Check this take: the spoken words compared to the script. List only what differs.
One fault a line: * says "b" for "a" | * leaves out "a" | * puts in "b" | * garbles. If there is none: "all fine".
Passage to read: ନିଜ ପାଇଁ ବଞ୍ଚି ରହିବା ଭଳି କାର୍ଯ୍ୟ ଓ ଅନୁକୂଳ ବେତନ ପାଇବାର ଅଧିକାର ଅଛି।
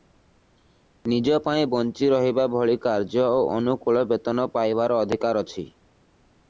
all fine